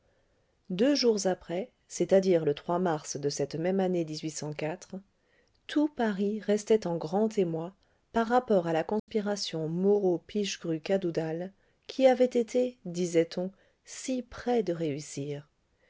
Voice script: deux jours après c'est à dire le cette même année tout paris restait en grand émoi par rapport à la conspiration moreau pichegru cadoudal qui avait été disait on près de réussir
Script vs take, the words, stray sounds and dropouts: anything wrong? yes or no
yes